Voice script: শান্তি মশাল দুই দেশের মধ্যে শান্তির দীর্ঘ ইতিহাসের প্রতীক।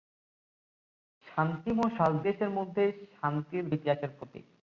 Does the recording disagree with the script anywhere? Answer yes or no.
yes